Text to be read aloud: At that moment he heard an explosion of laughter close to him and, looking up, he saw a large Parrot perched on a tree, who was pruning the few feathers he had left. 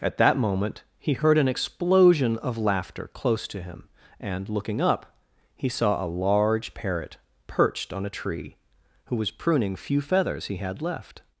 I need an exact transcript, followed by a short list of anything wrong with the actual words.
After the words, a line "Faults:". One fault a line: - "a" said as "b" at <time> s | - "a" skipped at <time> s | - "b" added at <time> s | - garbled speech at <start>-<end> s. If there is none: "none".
At that moment he heard an explosion of laughter close to him and, looking up, he saw a large Parrot perched on a tree, who was pruning few feathers he had left.
Faults:
- "the" skipped at 9.8 s